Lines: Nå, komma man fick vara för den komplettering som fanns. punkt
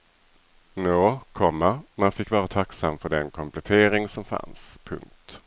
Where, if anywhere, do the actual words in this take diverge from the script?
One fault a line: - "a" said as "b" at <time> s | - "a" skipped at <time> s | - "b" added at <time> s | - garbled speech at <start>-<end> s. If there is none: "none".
- "tacksam" added at 2.5 s